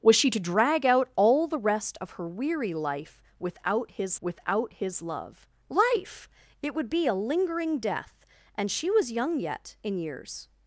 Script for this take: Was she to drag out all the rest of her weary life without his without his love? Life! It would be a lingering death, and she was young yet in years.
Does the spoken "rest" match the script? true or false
true